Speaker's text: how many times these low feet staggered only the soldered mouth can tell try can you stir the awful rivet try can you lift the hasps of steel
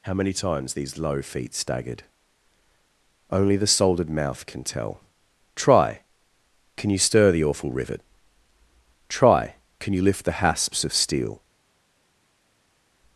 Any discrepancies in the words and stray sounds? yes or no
no